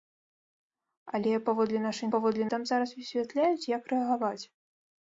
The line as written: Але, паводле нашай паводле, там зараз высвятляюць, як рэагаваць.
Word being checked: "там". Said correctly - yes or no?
yes